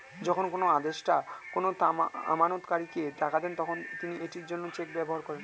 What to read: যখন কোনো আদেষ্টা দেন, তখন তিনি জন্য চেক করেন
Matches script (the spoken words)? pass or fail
fail